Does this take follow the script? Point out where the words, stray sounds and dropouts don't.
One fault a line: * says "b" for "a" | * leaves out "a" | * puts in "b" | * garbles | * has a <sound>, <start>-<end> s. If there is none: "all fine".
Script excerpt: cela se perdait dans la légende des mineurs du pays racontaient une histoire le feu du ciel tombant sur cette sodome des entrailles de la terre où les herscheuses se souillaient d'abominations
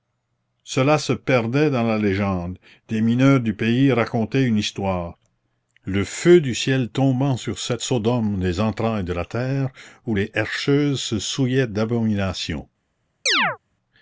* has a chirp, 13.3-13.6 s